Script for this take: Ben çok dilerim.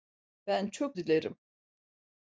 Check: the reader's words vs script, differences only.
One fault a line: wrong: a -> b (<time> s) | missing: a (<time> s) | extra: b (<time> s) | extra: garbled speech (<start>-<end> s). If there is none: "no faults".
no faults